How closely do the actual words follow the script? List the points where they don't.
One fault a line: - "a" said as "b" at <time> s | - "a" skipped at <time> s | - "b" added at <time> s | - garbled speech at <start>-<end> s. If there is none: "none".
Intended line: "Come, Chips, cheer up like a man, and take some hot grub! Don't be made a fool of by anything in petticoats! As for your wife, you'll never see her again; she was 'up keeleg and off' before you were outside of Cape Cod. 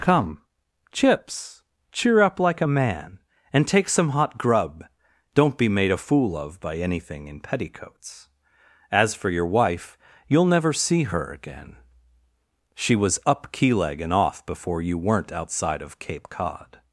- "were" said as "weren't" at 15.0 s